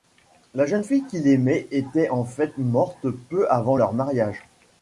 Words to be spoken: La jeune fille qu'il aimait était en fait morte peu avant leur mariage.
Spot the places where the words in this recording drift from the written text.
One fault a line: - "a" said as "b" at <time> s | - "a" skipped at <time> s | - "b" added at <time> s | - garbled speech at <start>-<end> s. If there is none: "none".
none